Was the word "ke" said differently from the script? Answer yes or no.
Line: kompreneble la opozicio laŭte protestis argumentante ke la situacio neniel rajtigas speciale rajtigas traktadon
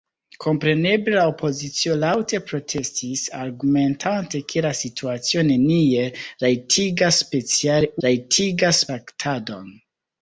no